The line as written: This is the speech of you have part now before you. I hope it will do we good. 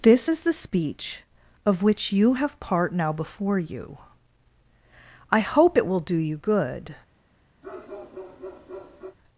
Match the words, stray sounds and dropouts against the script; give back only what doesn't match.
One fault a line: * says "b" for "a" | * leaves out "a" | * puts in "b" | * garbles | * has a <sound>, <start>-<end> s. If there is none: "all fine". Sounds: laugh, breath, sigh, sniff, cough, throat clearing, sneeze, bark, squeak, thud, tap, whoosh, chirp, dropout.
* puts in "which"
* says "you" for "we"
* has a bark, 7.6-9.2 s